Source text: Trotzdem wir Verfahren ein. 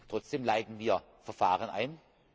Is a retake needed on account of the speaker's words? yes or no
yes